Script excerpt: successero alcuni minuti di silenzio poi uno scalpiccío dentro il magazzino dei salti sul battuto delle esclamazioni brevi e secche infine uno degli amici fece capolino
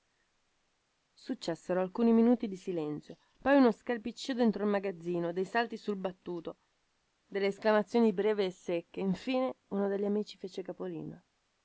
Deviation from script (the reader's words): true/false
false